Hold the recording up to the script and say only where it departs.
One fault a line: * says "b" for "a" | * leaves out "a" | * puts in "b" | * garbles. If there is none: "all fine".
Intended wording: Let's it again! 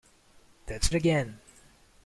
all fine